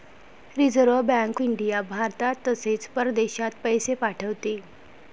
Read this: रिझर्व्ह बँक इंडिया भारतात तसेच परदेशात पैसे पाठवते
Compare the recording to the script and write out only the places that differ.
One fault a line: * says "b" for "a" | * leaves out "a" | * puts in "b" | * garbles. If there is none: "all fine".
all fine